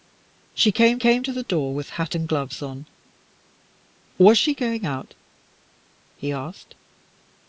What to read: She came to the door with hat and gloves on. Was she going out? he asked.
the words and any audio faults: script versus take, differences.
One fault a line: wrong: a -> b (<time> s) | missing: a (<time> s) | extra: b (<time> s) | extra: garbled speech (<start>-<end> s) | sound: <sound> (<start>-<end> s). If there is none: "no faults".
extra: came (1.0 s)